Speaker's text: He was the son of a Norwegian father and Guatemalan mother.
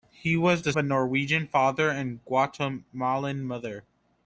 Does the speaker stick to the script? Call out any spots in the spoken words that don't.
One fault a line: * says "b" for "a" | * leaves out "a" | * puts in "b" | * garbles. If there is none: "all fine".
* leaves out "son of"